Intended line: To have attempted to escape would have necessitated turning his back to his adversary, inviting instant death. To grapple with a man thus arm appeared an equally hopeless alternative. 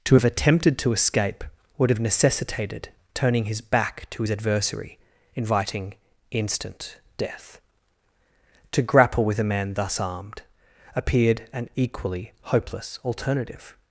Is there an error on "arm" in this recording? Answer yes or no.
yes